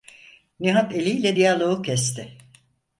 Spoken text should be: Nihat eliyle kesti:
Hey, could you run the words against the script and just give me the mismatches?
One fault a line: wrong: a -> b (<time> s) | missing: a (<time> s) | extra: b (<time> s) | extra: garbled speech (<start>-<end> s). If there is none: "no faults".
extra: diyaloğu (1.3 s)